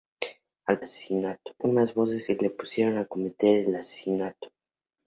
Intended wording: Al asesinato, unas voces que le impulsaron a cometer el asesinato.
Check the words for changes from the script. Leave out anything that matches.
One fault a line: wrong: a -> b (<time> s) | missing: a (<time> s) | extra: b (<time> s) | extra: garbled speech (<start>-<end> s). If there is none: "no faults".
no faults